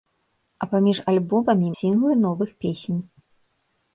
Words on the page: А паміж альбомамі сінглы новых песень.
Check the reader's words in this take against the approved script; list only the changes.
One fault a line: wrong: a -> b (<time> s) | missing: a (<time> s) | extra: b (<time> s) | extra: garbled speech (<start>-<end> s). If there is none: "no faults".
no faults